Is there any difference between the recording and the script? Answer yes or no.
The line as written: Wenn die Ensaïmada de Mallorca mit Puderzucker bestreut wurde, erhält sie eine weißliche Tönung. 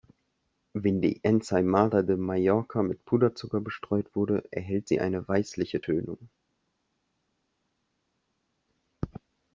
no